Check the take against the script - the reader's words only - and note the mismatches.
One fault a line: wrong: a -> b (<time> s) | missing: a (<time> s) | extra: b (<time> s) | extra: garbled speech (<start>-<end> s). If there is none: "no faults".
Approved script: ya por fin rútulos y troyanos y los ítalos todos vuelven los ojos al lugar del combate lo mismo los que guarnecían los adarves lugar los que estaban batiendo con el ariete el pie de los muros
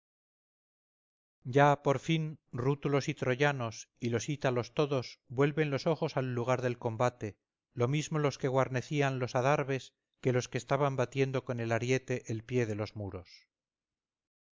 wrong: lugar -> que (10.2 s)